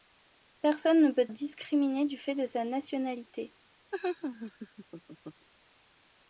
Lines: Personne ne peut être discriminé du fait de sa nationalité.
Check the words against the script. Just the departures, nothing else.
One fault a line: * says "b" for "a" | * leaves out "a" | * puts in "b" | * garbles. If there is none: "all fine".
* leaves out "être"